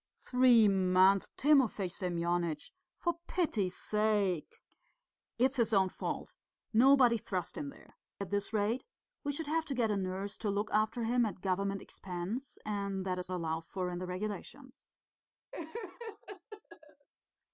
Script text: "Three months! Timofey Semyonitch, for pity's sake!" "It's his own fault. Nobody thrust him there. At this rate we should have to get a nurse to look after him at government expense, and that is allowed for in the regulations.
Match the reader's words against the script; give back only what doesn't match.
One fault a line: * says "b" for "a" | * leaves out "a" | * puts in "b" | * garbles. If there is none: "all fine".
all fine